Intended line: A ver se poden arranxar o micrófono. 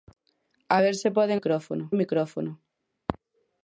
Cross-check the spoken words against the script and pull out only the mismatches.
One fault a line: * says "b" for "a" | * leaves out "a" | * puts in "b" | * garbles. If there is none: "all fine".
* says "micrófono" for "arranxar"